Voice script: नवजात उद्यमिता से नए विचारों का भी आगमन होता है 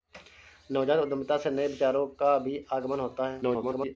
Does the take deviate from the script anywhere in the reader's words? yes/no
yes